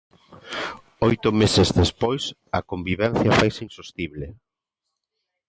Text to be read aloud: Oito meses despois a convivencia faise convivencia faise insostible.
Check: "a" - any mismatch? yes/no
no